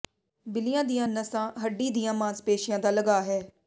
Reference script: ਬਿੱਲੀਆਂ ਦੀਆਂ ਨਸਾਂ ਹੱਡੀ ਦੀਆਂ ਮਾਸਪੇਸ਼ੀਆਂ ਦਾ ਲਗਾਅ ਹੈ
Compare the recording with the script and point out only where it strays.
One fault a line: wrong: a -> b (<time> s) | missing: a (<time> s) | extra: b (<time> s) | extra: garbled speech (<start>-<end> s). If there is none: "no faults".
no faults